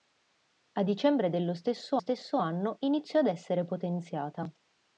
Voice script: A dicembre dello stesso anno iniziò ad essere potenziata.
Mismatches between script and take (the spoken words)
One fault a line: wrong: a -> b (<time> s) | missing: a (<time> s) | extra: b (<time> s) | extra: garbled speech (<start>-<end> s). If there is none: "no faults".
extra: stesso (2.0 s)